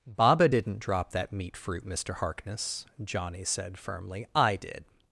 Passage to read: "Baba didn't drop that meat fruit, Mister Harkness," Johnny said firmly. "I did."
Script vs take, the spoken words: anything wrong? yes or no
no